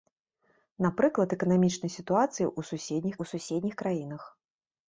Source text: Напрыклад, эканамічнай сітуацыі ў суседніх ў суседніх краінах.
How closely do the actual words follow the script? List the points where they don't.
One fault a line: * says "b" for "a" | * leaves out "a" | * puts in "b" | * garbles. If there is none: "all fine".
all fine